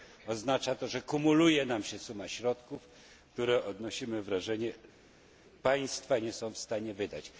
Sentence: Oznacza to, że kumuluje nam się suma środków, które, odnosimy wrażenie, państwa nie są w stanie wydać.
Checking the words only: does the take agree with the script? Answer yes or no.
yes